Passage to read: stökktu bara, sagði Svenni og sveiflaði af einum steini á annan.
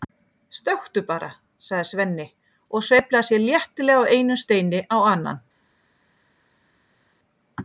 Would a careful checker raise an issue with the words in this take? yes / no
yes